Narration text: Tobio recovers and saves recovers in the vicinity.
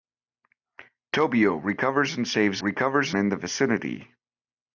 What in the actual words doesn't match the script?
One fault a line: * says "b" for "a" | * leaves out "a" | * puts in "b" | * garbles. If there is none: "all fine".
all fine